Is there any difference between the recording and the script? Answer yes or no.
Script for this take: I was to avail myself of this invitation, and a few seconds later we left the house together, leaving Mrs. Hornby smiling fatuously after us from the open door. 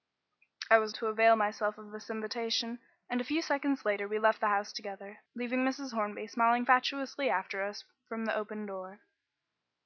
no